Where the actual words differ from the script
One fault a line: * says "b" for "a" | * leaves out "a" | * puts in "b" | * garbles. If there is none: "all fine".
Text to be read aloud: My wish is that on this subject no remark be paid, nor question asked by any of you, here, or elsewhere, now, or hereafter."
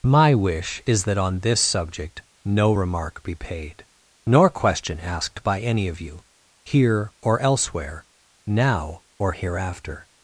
all fine